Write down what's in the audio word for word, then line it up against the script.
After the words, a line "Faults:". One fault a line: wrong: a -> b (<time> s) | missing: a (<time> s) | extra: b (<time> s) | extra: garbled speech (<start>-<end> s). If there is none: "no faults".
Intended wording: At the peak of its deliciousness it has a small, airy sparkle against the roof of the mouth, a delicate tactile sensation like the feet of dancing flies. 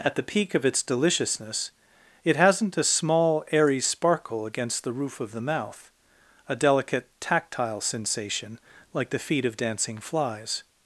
At the peak of its deliciousness it hasn't a small, airy sparkle against the roof of the mouth, a delicate tactile sensation like the feet of dancing flies.
Faults:
wrong: has -> hasn't (2.4 s)